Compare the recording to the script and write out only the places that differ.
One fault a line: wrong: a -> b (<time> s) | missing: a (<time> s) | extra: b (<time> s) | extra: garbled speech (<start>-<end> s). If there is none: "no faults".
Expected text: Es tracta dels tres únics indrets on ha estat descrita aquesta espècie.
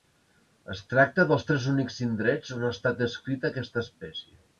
no faults